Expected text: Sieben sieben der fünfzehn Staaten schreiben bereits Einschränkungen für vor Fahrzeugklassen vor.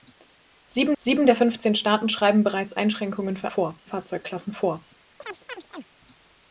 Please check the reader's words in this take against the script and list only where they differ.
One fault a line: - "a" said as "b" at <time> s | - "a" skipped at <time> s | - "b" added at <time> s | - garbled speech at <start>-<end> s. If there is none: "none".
none